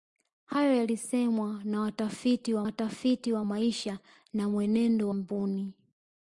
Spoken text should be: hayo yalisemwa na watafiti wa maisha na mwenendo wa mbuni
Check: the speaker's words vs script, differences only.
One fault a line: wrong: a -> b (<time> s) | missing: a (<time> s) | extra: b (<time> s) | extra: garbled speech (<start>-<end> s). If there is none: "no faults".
extra: watafiti wa (2.6 s)
missing: wa (5.1 s)